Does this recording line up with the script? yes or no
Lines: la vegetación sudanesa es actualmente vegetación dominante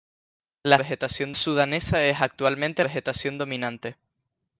yes